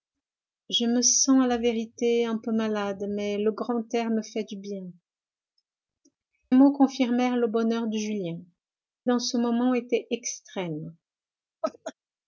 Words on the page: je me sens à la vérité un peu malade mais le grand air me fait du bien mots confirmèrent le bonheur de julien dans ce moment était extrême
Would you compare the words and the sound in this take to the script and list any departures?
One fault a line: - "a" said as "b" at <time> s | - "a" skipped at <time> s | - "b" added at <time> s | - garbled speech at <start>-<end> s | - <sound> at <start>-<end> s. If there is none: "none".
- laugh at 11.6-11.9 s